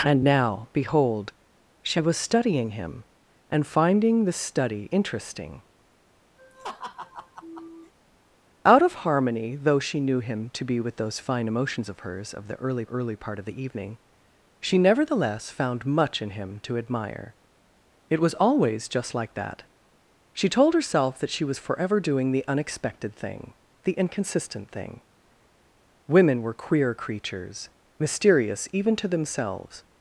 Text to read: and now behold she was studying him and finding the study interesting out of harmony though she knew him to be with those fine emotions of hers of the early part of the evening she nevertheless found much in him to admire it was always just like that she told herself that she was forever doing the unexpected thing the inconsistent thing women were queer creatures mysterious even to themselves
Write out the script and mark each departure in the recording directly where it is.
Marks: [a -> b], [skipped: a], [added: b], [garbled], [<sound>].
and now behold she was studying him and finding the study interesting [laugh] out of harmony though she knew him to be with those fine emotions of hers of the early [added: early] part of the evening she nevertheless found much in him to admire it was always just like that she told herself that she was forever doing the unexpected thing the inconsistent thing women were queer creatures mysterious even to themselves